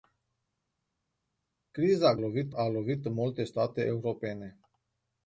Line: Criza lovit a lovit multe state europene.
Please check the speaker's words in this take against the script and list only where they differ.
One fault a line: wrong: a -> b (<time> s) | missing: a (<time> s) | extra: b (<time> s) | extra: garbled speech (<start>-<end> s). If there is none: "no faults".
no faults